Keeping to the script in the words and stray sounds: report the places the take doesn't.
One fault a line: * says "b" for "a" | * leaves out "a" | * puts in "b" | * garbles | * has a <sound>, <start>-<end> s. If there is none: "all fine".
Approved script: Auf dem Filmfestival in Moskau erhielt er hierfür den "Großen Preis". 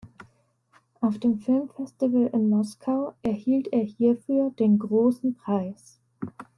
all fine